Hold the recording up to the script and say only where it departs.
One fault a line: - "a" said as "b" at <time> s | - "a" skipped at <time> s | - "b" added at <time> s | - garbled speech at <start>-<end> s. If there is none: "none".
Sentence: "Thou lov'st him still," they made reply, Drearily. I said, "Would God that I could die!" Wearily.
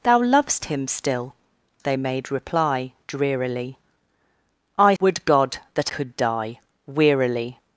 - "said" skipped at 5.0 s
- "I" skipped at 5.9 s